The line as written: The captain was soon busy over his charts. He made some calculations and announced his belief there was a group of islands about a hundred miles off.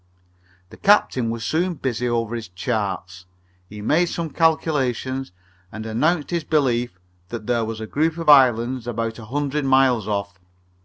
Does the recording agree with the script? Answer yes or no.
no